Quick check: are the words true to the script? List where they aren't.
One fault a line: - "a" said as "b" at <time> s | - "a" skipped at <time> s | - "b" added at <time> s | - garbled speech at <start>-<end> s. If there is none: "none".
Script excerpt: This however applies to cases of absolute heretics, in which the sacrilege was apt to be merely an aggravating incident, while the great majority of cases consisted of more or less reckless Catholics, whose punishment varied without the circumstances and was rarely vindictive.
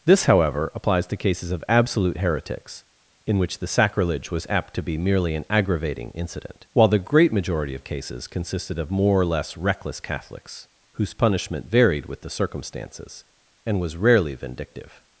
- "without" said as "with" at 12.1 s